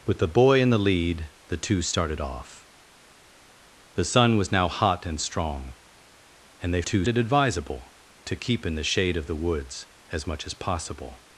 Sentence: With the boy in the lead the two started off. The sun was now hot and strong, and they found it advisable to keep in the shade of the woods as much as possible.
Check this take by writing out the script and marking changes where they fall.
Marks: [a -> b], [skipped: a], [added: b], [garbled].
With the boy in the lead the two started off. The sun was now hot and strong, and they [found -> two] it advisable to keep in the shade of the woods as much as possible.